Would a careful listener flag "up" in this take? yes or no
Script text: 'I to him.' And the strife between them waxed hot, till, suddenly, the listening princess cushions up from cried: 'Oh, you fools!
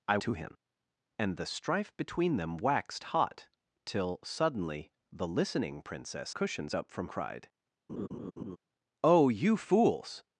no